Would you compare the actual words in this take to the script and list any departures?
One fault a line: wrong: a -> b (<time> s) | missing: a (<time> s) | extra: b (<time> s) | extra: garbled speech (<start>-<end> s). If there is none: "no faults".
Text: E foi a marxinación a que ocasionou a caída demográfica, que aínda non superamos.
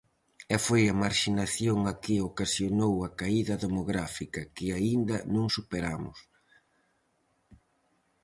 no faults